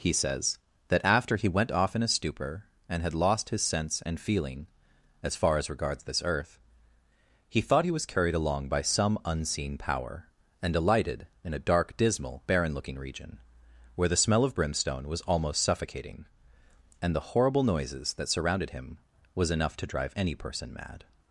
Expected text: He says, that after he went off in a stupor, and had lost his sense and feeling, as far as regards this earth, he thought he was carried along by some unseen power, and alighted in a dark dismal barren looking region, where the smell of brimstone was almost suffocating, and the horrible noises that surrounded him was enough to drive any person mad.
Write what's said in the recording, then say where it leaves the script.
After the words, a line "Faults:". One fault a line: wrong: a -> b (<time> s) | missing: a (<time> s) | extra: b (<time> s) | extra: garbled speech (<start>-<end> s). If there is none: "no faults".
He says, that after he went off in a stupor, and had lost his sense and feeling, as far as regards this earth, he thought he was carried along by some unseen power, and alighted in a dark dismal barren looking region, where the smell of brimstone was almost suffocating, and the horrible noises that surrounded him was enough to drive any person mad.
Faults:
no faults